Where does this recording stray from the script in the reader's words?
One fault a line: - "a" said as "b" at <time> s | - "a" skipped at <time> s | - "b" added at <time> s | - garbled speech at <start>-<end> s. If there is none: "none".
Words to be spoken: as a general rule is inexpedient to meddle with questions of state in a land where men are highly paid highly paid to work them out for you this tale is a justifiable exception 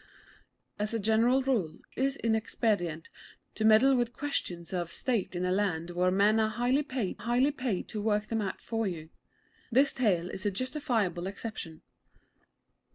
none